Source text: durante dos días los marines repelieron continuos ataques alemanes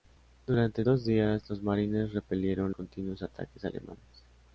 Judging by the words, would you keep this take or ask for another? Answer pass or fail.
pass